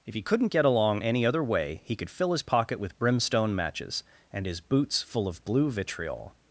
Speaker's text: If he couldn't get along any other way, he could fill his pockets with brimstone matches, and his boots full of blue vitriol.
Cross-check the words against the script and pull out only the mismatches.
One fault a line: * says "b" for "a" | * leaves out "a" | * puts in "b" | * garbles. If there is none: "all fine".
* says "pocket" for "pockets"